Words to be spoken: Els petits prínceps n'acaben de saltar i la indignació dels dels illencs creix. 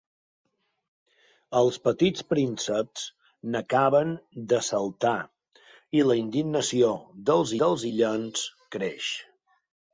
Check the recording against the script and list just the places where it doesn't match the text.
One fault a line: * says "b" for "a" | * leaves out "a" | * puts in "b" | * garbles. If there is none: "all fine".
all fine